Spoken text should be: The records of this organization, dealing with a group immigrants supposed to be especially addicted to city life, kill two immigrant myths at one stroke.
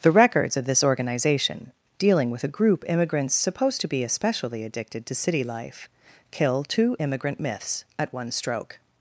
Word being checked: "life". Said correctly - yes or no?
yes